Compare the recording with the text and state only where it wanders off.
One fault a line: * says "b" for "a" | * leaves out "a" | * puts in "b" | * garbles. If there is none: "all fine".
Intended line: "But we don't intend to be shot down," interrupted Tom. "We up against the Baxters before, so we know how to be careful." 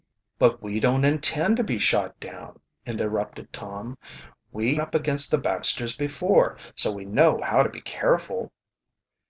all fine